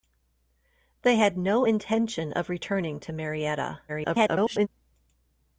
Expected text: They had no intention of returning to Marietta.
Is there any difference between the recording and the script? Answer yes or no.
yes